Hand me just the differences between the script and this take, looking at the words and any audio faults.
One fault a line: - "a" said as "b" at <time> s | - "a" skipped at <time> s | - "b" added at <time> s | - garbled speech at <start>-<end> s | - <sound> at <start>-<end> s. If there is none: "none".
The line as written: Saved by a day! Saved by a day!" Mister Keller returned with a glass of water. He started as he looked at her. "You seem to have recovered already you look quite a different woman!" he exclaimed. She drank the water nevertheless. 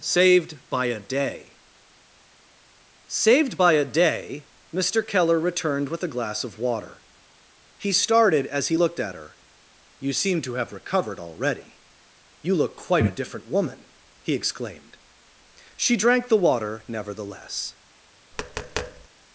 - tap at 18.3-19.1 s